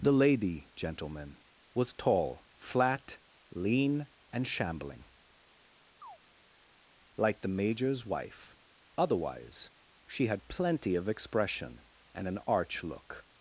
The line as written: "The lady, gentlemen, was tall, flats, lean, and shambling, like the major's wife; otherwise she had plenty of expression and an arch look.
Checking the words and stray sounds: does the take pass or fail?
fail